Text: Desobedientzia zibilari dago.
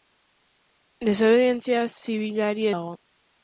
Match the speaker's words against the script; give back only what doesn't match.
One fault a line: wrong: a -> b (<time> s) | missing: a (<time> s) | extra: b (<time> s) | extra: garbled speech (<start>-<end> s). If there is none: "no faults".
no faults